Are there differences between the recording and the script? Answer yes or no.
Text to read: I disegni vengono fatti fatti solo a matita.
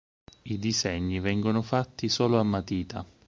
yes